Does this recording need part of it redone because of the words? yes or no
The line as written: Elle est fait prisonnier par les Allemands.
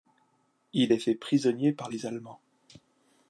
yes